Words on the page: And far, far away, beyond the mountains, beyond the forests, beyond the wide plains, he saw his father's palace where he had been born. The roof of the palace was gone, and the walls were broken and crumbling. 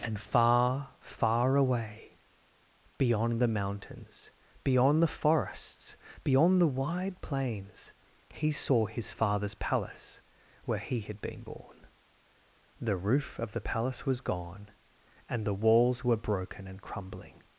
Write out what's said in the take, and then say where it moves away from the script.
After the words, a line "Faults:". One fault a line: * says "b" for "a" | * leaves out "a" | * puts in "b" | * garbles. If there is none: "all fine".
And far, far away, beyond the mountains, beyond the forests, beyond the wide plains, he saw his father's palace where he had been born. The roof of the palace was gone, and the walls were broken and crumbling.
Faults:
all fine